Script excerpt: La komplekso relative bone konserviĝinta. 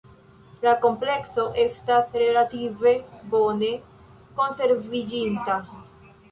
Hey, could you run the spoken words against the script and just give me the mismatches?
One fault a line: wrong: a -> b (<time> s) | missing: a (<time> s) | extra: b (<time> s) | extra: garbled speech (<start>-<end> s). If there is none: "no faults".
extra: estas (1.6 s)